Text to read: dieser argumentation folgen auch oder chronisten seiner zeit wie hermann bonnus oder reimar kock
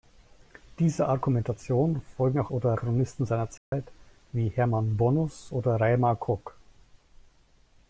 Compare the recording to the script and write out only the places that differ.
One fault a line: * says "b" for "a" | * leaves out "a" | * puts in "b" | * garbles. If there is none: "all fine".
all fine